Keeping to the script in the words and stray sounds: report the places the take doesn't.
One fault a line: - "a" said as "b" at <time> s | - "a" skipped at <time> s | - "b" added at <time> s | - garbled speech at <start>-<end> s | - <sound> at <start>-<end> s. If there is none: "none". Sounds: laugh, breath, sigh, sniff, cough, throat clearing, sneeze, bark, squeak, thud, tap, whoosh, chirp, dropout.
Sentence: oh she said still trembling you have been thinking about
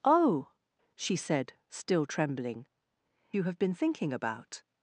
none